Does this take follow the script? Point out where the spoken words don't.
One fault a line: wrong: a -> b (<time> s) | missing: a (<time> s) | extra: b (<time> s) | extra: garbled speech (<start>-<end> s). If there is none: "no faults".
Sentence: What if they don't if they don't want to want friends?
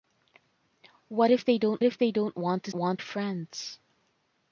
no faults